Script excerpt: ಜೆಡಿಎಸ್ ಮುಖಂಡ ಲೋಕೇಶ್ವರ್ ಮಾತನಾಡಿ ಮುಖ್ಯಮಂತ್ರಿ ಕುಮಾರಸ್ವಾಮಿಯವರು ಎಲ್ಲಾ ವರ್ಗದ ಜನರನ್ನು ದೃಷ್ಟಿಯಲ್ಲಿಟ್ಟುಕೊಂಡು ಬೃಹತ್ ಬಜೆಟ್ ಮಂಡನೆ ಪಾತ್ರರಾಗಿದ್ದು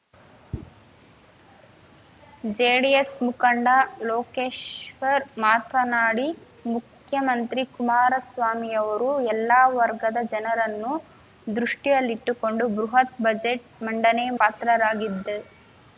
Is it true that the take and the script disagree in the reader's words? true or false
false